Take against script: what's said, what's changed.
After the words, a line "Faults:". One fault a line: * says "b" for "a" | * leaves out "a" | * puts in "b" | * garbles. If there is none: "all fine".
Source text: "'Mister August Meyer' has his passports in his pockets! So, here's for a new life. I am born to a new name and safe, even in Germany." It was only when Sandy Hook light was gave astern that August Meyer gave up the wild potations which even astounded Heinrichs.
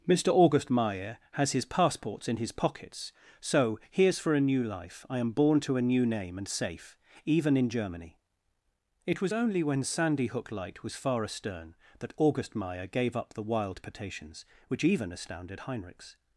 "'Mister August Meyer' has his passports in his pockets! So, here's for a new life. I am born to a new name and safe, even in Germany." It was only when Sandy Hook light was far astern that August Meyer gave up the wild potations which even astounded Heinrichs.
Faults:
* says "far" for "gave"